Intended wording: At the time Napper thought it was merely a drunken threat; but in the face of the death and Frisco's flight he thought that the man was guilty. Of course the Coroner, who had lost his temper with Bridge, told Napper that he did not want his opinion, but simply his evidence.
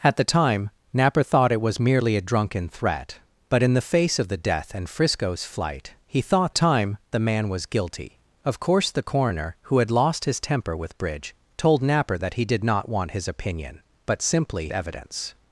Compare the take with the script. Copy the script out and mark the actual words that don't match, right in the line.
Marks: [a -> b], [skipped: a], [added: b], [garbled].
At the time Napper thought it was merely a drunken threat; but in the face of the death and Frisco's flight he thought [that -> time] the man was guilty. Of course the Coroner, who had lost his temper with Bridge, told Napper that he did not want his opinion, but simply [skipped: his] evidence.